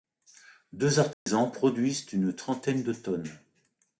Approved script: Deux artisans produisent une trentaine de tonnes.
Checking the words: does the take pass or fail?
pass